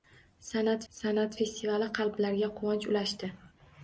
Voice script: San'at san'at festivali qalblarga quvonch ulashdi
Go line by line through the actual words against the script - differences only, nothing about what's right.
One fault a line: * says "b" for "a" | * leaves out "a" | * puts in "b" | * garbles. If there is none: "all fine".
all fine